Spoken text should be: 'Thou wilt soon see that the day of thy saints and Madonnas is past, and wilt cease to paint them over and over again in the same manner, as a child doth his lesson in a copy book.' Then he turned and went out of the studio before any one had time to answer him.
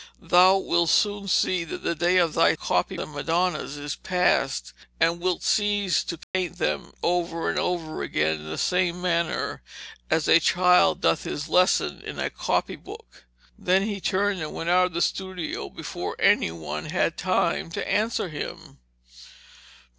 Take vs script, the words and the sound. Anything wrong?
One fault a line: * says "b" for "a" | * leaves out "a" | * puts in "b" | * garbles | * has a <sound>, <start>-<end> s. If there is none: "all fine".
* says "copy" for "saints"
* has a dropout, 6.2-6.3 s